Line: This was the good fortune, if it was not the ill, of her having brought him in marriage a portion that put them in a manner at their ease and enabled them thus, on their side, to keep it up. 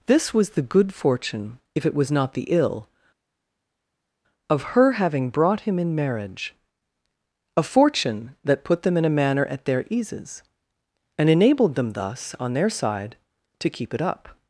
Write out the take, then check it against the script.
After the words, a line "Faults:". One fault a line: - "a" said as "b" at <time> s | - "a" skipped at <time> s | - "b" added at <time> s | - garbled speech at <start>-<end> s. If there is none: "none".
This was the good fortune, if it was not the ill, of her having brought him in marriage a fortune that put them in a manner at their eases and enabled them thus, on their side, to keep it up.
Faults:
- "portion" said as "fortune" at 7.6 s
- "ease" said as "eases" at 9.9 s